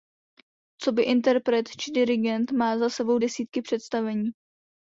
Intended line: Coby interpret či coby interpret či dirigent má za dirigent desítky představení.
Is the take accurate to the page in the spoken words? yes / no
no